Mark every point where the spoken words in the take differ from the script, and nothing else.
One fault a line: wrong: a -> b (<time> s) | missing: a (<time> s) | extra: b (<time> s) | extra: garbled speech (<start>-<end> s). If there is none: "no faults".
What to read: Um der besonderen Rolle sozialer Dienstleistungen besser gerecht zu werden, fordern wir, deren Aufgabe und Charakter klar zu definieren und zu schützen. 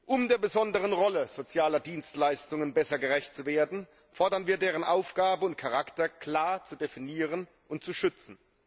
no faults